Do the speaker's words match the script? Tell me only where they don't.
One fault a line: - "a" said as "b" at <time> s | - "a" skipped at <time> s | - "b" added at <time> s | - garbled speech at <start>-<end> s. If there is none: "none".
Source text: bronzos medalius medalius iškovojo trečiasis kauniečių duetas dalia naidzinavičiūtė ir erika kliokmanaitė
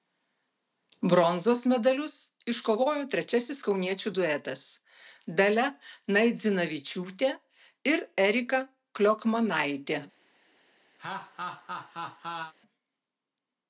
- "medalius" skipped at 2.1 s